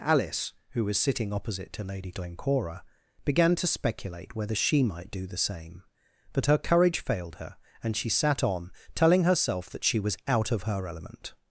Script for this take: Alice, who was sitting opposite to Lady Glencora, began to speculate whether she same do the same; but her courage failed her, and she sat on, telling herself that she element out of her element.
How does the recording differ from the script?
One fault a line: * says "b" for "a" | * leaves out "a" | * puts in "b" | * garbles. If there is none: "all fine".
* says "might" for "same"
* says "was" for "element"